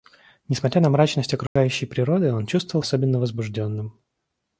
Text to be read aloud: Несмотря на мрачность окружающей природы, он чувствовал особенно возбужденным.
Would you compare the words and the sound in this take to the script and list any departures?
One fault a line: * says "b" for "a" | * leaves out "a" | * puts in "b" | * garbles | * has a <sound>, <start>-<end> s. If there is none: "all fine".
* has a dropout, 1.5-1.6 s